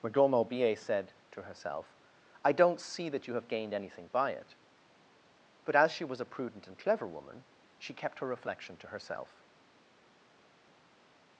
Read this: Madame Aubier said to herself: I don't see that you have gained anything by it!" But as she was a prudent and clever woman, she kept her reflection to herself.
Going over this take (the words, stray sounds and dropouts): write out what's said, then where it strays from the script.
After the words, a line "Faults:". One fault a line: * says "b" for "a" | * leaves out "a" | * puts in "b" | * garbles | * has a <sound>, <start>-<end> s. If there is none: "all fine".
Madame Aubier said to herself: I don't see that you have gained anything by it!" But as she was a prudent and clever woman, she kept her reflection to herself.
Faults:
all fine